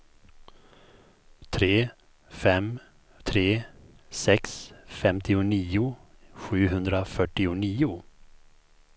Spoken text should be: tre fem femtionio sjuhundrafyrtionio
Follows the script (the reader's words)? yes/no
no